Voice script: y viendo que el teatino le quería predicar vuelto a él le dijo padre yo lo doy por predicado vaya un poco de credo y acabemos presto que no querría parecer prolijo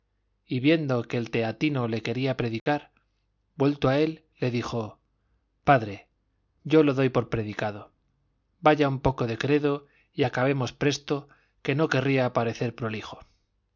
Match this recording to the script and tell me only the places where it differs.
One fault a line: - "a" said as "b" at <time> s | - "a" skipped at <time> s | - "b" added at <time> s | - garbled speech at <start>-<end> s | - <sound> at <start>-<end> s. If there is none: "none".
- dropout at 2.6-2.7 s